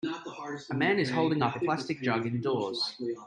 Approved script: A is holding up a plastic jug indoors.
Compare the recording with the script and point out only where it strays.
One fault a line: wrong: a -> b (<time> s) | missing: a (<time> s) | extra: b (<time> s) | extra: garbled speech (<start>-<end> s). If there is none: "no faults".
extra: man (0.7 s)